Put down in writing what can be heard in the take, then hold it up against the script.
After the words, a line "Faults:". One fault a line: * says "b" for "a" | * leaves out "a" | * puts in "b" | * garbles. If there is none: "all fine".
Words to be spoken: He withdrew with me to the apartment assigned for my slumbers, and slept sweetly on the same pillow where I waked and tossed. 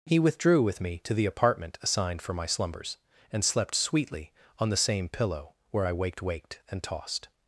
He withdrew with me to the apartment assigned for my slumbers, and slept sweetly on the same pillow where I waked waked and tossed.
Faults:
* puts in "waked"